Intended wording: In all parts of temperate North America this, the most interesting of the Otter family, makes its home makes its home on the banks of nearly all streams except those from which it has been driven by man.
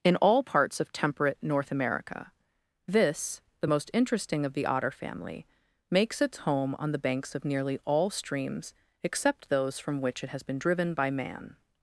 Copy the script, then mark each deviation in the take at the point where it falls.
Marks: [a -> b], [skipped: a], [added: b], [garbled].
In all parts of temperate North America this, the most interesting of the Otter family, makes its home [skipped: makes its home] on the banks of nearly all streams except those from which it has been driven by man.